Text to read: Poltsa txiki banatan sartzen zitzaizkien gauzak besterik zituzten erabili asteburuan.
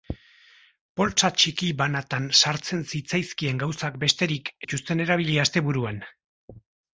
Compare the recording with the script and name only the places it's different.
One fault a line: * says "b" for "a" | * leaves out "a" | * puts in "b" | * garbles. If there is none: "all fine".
all fine